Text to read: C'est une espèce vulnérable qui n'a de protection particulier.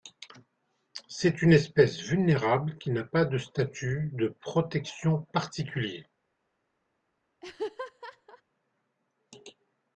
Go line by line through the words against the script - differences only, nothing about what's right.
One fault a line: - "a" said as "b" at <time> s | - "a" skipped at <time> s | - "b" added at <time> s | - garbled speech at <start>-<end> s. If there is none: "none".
- "pas de statut" added at 3.0 s